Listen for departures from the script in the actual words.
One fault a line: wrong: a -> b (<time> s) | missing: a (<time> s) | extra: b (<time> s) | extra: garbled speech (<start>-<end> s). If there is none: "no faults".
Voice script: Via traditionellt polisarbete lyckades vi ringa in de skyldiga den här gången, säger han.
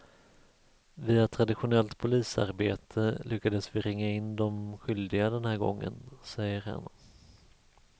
no faults